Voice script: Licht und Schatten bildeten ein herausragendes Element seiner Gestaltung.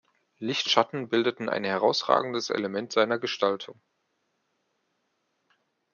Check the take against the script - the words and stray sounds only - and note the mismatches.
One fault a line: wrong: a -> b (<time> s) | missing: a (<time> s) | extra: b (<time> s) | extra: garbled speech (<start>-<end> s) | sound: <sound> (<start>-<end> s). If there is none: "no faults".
missing: und (0.7 s)